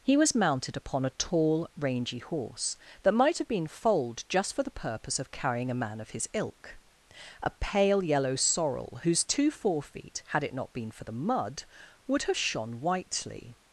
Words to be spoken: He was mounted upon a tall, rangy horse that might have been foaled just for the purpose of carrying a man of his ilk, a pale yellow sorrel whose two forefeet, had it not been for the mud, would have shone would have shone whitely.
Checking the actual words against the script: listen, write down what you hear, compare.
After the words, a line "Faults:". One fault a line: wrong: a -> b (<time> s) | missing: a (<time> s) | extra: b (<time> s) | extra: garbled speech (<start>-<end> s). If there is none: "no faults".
He was mounted upon a tall, rangy horse that might have been foaled just for the purpose of carrying a man of his ilk, a pale yellow sorrel whose two forefeet, had it not been for the mud, would have shone whitely.
Faults:
missing: would have shone (12.8 s)